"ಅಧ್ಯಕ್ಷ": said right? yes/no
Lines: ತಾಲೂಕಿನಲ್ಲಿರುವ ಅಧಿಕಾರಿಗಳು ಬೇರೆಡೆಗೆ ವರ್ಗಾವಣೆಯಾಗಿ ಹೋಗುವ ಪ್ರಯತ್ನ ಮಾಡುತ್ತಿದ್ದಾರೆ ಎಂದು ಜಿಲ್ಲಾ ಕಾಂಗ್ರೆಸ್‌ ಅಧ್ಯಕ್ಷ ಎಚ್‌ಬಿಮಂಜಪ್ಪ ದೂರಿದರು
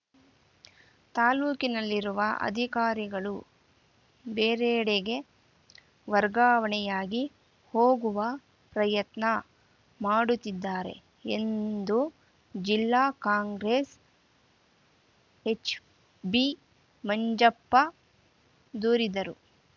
no